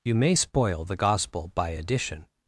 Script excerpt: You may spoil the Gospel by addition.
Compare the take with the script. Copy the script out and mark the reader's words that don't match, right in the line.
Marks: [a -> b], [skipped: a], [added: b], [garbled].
You may spoil the Gospel by addition.